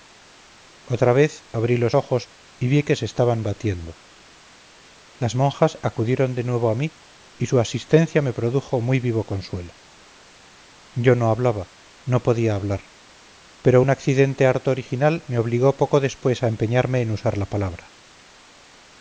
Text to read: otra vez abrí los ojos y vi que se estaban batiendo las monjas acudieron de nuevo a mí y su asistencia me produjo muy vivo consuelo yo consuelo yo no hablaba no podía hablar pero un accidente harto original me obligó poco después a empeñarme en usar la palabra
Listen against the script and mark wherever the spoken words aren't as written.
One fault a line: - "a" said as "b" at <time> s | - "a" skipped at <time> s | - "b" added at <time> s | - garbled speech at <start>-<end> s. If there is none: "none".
- "consuelo yo" skipped at 11.2 s